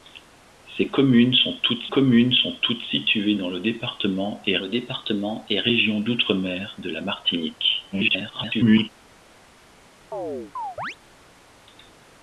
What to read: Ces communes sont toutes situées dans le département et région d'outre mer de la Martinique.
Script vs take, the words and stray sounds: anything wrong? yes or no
yes